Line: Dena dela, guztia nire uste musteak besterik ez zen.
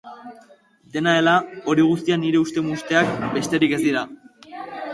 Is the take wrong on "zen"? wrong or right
wrong